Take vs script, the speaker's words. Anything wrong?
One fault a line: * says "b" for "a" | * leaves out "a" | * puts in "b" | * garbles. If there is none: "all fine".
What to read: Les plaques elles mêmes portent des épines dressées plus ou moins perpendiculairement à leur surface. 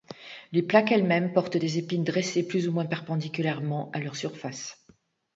all fine